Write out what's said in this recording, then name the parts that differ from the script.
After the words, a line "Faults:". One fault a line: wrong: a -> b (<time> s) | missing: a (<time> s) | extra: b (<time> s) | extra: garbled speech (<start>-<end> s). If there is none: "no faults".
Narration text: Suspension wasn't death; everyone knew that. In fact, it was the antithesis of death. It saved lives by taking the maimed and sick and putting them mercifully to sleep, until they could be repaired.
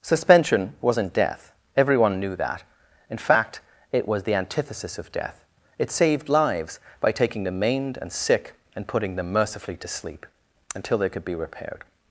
Suspension wasn't death; everyone knew that. In fact, it was the antithesis of death. It saved lives by taking the maimed and sick and putting them mercifully to sleep, until they could be repaired.
Faults:
no faults